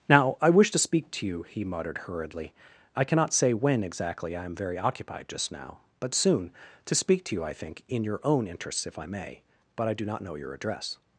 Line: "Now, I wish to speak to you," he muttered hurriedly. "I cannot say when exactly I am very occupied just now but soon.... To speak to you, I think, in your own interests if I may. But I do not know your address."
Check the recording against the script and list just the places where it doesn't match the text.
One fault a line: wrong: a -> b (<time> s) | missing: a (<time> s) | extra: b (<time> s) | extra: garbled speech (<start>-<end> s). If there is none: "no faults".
no faults